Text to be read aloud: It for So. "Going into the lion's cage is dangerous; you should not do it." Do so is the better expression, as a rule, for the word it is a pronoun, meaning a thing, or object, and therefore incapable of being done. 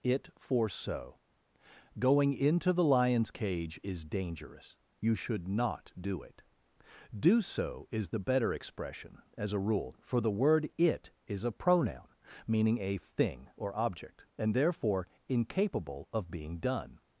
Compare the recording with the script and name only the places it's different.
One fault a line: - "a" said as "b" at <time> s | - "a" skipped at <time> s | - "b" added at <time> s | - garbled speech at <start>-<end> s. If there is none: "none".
none